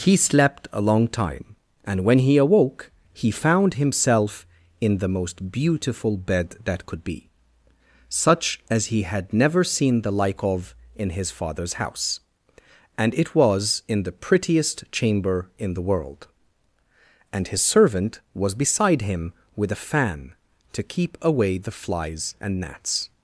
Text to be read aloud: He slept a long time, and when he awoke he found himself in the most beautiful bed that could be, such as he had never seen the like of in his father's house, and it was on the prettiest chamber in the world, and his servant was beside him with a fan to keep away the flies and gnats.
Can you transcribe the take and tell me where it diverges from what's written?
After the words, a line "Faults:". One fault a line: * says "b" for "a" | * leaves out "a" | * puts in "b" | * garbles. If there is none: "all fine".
He slept a long time, and when he awoke he found himself in the most beautiful bed that could be, such as he had never seen the like of in his father's house, and it was in the prettiest chamber in the world, and his servant was beside him with a fan to keep away the flies and gnats.
Faults:
* says "in" for "on"